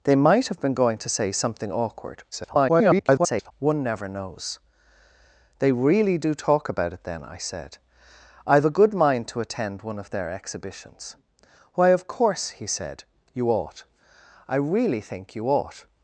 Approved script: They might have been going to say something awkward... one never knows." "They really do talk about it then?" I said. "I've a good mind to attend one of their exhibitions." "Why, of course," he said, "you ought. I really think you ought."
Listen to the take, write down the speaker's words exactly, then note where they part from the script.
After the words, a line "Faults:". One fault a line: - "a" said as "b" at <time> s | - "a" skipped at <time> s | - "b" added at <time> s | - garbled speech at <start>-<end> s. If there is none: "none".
They might have been going to say something awkward... [garbled] one never knows." "They really do talk about it then?" I said. "I've a good mind to attend one of their exhibitions." "Why, of course," he said, "you ought. I really think you ought."
Faults:
- garbled speech at 2.3-3.5 s